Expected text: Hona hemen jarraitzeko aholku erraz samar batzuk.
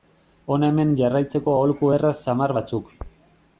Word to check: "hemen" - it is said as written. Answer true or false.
true